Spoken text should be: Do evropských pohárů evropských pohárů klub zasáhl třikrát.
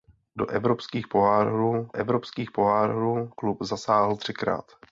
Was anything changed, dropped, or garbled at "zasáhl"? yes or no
no